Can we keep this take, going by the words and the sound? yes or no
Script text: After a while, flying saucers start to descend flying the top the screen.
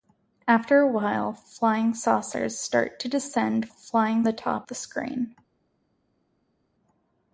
yes